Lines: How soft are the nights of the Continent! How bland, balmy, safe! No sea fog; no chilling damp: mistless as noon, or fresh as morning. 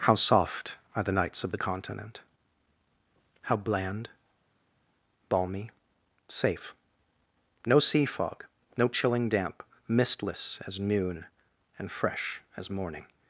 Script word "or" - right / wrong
wrong